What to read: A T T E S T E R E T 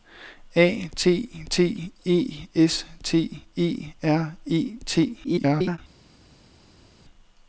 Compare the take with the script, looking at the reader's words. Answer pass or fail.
fail